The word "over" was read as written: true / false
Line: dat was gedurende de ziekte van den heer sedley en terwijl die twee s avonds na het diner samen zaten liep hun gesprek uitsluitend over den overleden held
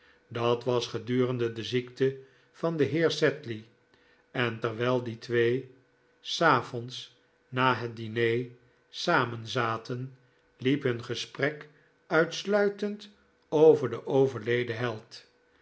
true